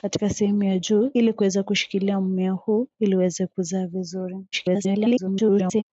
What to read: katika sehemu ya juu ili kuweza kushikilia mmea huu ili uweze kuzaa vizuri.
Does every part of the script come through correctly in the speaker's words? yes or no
no